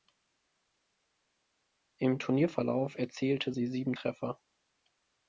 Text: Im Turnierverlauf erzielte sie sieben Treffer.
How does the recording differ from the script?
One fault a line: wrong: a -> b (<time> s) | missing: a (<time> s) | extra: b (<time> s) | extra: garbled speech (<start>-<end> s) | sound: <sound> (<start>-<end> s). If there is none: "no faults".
no faults